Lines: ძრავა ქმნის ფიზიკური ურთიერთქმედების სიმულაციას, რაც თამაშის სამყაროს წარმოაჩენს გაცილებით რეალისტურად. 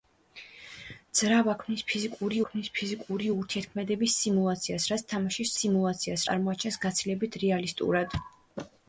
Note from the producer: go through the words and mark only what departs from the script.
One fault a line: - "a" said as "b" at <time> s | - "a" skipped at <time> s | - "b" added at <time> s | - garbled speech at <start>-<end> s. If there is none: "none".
- "ქმნის ფიზიკური" added at 2.5 s
- "სამყაროს" said as "სიმულაციას" at 5.6 s